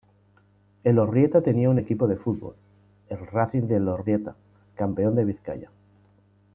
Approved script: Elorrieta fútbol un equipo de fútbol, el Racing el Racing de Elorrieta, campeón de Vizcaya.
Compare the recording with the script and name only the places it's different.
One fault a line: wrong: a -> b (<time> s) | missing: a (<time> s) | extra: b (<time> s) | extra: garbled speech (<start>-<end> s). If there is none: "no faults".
wrong: fútbol -> tenía (1.4 s)
missing: el Racing (3.7 s)